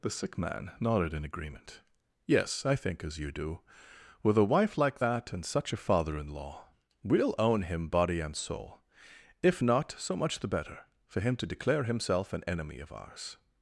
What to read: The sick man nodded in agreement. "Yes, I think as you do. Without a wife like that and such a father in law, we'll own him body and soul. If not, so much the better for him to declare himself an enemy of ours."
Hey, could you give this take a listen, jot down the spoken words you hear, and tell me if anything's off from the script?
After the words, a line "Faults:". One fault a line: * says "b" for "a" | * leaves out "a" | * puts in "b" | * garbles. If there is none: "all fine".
The sick man nodded in agreement. "Yes, I think as you do. With a wife like that and such a father in law, we'll own him body and soul. If not, so much the better for him to declare himself an enemy of ours."
Faults:
* says "With" for "Without"